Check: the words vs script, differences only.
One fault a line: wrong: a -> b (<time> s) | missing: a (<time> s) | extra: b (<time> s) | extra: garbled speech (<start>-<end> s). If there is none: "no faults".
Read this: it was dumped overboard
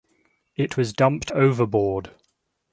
no faults